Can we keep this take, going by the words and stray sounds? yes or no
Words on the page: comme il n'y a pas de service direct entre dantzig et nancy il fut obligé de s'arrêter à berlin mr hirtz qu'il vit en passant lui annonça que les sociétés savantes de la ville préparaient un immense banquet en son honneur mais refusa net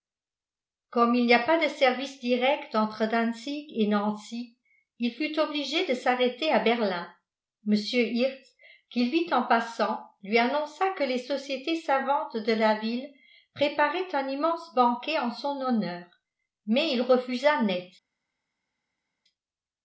no